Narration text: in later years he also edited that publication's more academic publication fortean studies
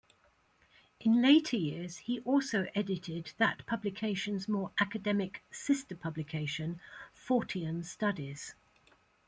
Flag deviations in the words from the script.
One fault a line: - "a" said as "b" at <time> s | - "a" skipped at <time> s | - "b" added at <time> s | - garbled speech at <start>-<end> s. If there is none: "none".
- "sister" added at 5.5 s